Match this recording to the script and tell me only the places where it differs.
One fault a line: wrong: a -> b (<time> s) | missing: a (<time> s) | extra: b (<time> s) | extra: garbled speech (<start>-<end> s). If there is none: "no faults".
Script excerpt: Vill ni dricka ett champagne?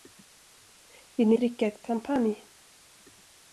no faults